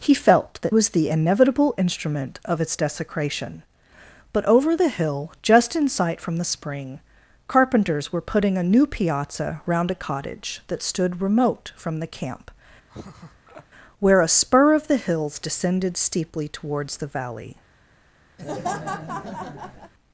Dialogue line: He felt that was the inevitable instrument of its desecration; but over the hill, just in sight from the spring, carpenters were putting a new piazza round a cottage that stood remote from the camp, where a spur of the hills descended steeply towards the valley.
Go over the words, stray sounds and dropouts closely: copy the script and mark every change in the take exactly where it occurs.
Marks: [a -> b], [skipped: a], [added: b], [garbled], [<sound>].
He felt that was the inevitable instrument of its desecration; but over the hill, just in sight from the spring, carpenters were putting a new piazza round a cottage that stood remote from the camp, [laugh] where a spur of the hills descended steeply towards the valley. [laugh]